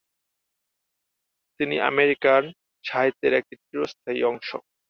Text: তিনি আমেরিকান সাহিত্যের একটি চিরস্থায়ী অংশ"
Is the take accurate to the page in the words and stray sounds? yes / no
yes